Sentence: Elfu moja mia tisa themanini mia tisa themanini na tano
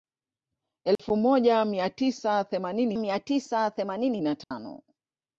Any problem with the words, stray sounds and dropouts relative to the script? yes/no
yes